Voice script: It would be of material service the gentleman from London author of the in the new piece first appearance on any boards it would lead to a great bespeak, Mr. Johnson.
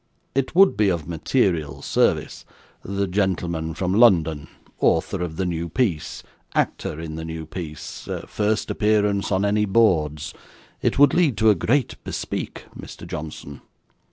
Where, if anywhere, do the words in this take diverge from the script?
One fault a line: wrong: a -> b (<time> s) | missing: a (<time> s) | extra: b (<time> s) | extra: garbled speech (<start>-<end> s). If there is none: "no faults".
extra: new piece actor (5.4 s)